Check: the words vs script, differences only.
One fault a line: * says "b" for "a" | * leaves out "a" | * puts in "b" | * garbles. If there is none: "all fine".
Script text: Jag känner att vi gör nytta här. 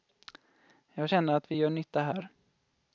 all fine